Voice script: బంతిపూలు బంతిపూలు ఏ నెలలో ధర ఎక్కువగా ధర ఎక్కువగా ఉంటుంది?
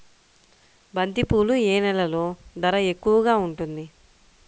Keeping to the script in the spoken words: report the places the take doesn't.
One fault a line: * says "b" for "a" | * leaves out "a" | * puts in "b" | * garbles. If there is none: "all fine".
* leaves out "బంతిపూలు"
* leaves out "ధర ఎక్కువగా"